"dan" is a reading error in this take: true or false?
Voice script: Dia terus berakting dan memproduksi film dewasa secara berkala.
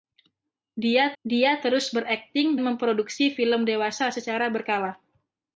true